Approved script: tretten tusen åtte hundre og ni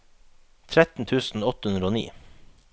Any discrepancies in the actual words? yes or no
no